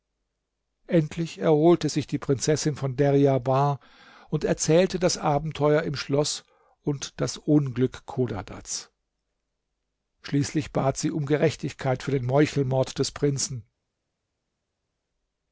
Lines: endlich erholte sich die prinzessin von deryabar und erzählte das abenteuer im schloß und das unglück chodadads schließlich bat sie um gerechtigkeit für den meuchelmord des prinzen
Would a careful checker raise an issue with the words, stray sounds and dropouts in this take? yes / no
no